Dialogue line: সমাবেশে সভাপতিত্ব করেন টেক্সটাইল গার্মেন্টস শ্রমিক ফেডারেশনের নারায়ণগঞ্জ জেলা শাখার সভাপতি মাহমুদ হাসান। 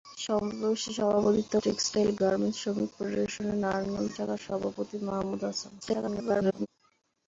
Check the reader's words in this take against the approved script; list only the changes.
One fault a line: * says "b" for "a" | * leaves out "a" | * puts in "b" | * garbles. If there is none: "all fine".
* leaves out "করেন"
* leaves out "জেলা"
* garbles